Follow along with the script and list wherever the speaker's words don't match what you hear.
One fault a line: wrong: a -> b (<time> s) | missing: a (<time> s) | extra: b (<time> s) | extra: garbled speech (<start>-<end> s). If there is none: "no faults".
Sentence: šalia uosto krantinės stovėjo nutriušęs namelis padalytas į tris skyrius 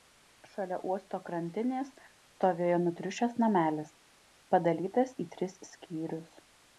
no faults